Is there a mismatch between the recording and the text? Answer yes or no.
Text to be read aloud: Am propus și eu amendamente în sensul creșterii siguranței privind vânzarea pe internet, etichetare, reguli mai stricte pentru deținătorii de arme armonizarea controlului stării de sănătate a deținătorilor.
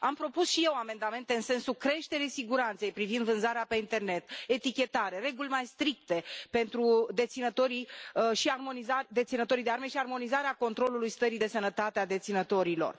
yes